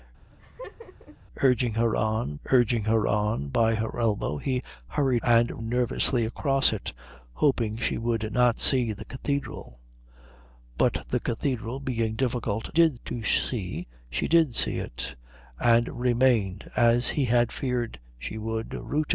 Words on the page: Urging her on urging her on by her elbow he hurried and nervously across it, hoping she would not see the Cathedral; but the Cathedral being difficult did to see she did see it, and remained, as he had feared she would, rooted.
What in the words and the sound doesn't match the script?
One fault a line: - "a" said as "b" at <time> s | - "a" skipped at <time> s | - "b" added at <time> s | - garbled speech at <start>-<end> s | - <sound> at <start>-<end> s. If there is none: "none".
- laugh at 0.3-1.2 s